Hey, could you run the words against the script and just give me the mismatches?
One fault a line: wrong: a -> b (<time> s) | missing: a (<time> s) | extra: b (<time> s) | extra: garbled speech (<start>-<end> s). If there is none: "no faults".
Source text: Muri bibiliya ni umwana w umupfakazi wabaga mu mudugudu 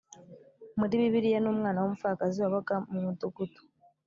no faults